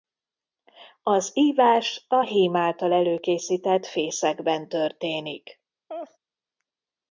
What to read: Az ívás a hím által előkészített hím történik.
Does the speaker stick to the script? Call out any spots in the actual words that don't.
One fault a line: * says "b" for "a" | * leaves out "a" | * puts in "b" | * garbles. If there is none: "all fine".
* says "fészekben" for "hím"